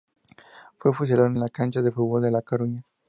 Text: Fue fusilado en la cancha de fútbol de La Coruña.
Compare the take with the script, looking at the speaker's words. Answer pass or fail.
pass